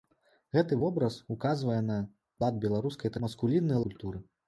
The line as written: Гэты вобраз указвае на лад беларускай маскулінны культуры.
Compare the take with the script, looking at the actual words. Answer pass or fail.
pass